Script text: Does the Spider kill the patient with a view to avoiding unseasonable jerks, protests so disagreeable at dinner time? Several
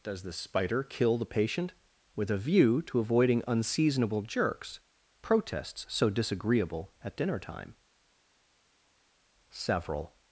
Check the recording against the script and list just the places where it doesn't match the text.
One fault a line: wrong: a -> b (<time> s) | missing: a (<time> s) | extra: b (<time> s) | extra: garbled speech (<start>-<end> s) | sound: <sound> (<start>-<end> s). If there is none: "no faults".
no faults